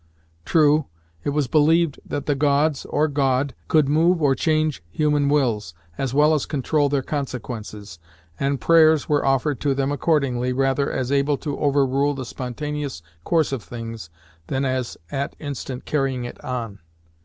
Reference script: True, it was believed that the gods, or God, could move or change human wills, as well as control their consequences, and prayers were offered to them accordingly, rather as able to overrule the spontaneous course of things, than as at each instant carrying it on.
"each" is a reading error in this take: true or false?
true